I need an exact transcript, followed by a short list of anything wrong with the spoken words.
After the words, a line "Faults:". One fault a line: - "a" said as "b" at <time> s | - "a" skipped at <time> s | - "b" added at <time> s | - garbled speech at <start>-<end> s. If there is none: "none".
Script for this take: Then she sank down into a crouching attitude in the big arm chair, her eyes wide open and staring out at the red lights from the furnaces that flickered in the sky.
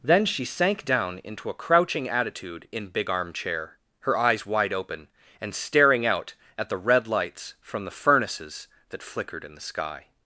Then she sank down into a crouching attitude in big arm chair, her eyes wide open and staring out at the red lights from the furnaces that flickered in the sky.
Faults:
- "the" skipped at 2.9 s